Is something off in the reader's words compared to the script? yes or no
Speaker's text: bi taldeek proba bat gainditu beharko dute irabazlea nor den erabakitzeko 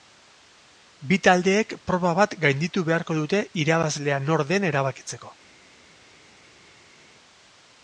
no